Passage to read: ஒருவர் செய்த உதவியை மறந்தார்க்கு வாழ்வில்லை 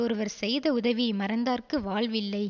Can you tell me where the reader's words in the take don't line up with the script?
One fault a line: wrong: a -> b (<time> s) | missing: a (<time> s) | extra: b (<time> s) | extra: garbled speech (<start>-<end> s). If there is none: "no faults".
no faults